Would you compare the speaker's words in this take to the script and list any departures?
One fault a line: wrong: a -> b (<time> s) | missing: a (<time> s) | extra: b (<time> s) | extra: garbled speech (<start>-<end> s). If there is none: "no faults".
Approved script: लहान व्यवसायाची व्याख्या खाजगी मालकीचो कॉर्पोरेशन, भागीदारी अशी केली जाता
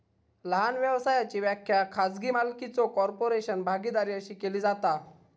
no faults